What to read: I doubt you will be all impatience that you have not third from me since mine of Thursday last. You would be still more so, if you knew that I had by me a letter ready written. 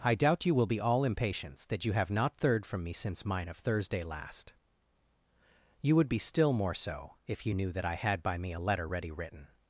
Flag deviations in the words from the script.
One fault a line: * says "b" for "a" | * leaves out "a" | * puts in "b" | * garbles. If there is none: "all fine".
all fine